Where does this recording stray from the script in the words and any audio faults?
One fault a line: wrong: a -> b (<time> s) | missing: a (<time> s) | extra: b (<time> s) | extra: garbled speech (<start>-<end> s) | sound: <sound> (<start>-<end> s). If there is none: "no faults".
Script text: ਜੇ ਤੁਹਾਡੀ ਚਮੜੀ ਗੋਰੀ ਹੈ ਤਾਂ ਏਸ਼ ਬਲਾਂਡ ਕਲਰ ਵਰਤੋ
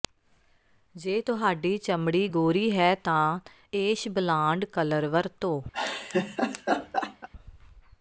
sound: laugh (5.7-7.3 s)